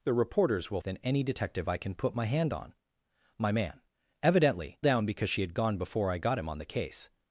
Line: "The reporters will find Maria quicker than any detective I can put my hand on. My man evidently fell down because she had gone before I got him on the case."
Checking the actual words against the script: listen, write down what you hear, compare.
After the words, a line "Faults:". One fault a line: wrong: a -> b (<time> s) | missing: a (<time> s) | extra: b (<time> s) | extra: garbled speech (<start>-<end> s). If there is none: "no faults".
"The reporters will than any detective I can put my hand on. My man evidently down because she had gone before I got him on the case."
Faults:
missing: find Maria quicker (0.8 s)
missing: fell (4.8 s)